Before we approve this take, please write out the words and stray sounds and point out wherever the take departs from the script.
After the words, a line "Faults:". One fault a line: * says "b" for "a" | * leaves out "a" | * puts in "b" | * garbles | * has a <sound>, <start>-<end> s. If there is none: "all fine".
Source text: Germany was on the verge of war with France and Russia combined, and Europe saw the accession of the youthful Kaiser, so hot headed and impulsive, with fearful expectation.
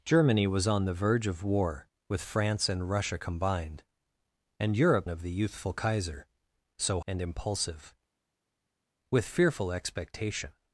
Germany was on the verge of war with France and Russia combined, and Europe of the youthful Kaiser, so and impulsive, with fearful expectation.
Faults:
* leaves out "saw the accession"
* leaves out "hot headed"